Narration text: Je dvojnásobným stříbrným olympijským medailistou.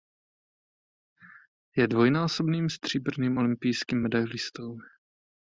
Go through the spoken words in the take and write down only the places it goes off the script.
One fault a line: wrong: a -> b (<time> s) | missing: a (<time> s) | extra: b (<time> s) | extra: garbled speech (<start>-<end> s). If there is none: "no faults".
no faults